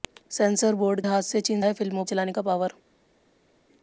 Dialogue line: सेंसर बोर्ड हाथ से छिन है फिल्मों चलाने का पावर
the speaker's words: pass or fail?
pass